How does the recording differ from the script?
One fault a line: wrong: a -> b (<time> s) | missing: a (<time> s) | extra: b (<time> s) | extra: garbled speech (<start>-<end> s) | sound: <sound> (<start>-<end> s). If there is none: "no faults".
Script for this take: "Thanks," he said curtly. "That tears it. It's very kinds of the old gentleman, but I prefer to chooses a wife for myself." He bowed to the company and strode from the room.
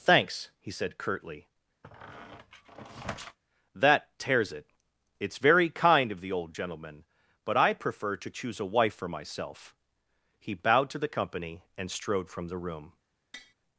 sound: squeak (1.8-3.4 s)
wrong: kinds -> kind (5.7 s)
wrong: chooses -> choose (8.3 s)
sound: tap (13.3-13.5 s)